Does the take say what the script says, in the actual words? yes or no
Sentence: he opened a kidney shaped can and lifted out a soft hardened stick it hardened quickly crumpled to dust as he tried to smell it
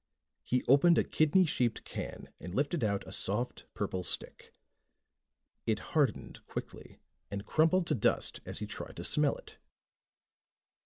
no